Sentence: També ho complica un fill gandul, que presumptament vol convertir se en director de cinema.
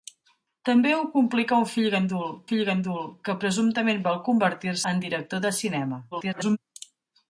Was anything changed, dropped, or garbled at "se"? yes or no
yes